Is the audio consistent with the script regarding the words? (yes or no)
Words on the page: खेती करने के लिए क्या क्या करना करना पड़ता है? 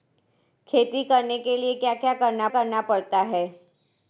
yes